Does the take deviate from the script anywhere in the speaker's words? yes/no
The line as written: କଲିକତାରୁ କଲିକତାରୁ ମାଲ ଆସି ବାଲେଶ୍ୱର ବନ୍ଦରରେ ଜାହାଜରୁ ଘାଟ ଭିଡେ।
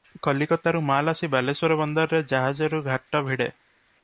yes